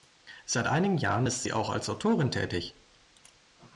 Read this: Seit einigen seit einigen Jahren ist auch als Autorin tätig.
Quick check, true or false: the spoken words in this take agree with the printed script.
false